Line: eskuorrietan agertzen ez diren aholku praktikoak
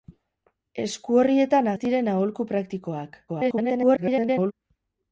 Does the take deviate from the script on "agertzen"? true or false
true